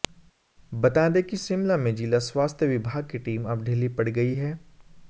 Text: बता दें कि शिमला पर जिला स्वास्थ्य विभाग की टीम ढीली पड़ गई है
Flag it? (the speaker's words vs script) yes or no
yes